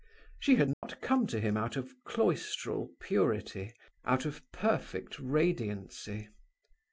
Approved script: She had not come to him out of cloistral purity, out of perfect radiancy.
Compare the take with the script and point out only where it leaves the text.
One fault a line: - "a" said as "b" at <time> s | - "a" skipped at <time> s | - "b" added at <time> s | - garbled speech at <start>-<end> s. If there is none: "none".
none